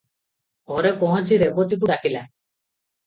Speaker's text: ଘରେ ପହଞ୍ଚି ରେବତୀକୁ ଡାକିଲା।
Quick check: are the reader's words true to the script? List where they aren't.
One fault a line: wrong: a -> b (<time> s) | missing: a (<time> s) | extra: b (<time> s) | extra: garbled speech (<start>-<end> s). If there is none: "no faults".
no faults